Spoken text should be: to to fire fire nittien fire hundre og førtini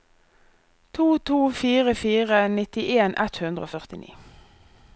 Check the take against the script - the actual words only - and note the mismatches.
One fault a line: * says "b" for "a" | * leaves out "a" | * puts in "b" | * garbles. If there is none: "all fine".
* says "ett" for "fire"